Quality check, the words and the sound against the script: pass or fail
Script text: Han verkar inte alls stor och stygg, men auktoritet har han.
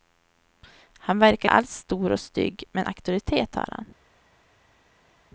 fail